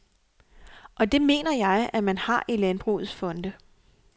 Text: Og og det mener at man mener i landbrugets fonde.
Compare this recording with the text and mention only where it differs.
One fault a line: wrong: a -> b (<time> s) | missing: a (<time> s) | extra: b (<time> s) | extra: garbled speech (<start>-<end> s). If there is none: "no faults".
missing: og (1.1 s)
extra: jeg (1.5 s)
wrong: mener -> har (2.2 s)